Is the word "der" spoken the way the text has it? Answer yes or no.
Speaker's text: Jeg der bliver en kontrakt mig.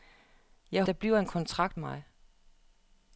yes